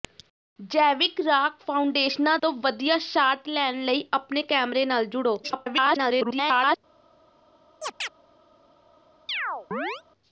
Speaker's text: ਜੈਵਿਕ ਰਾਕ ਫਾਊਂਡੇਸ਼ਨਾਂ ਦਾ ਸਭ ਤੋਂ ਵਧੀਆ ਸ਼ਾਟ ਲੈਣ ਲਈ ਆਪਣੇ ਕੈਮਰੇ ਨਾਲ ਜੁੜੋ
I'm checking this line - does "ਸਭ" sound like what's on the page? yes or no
no